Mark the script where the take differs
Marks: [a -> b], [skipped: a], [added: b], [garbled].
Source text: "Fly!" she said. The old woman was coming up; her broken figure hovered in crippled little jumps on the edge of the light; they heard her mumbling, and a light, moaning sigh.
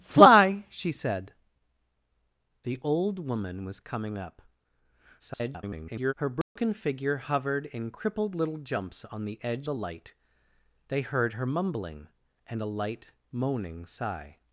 "Fly!" she said. The old woman was coming up; [garbled] her broken figure hovered in crippled little jumps on the edge [skipped: of] the light; they heard her mumbling, and a light, moaning sigh.